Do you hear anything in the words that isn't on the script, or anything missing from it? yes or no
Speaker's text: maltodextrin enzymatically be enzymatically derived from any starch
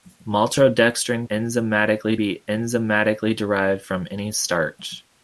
no